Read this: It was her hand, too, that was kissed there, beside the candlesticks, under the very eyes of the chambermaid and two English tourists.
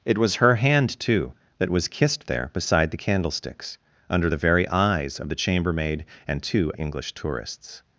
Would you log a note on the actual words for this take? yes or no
no